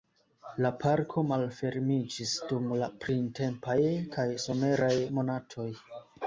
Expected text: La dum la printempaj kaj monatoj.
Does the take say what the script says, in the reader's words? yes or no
no